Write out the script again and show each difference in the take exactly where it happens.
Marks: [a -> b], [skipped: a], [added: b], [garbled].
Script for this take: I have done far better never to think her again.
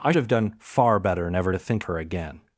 I have done far better never to think her again.